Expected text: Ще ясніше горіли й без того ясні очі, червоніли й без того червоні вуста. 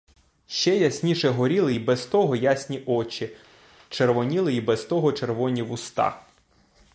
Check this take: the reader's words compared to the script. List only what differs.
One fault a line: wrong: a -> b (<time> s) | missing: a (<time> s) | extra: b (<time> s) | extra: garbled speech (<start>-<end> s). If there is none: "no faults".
no faults